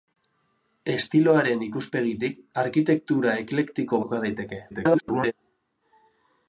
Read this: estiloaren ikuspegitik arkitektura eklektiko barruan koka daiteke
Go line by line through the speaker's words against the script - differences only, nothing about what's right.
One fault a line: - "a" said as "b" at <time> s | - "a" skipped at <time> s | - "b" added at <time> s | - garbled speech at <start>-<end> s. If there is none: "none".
- "barruan" skipped at 4.0 s
- garbled speech at 4.7-5.3 s